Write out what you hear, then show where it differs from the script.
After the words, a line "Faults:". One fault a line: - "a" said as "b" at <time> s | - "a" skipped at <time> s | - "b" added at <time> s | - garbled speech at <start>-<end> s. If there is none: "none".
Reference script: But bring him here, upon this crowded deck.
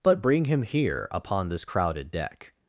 But bring him here, upon this crowded deck.
Faults:
none